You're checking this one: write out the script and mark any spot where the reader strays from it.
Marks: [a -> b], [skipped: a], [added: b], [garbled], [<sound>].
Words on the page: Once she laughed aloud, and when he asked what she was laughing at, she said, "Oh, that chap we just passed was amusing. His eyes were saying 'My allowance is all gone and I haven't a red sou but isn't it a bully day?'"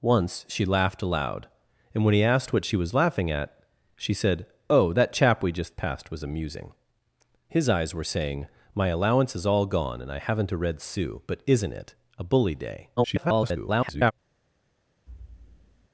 Once she laughed aloud, and when he asked what she was laughing at, she said, "Oh, that chap we just passed was amusing. His eyes were saying 'My allowance is all gone and I haven't a red sou but isn't it a bully day?'" [garbled] [thud]